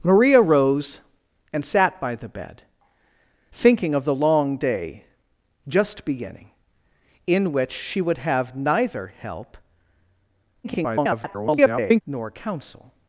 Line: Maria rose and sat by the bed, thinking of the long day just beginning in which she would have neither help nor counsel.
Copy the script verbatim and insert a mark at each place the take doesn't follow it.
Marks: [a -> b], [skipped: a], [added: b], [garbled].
Maria rose and sat by the bed, thinking of the long day just beginning in which she would have neither help [garbled] nor counsel.